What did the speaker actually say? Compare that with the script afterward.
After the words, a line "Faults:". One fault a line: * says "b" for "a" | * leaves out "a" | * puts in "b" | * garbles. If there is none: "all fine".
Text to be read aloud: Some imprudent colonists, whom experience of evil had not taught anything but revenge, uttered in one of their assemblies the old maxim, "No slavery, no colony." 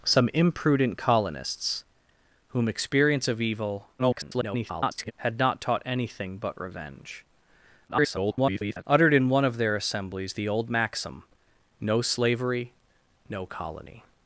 Some imprudent colonists, whom experience of evil [garbled] had not taught anything but revenge, [garbled] uttered in one of their assemblies the old maxim, "No slavery, no colony."
Faults:
* garbles
* garbles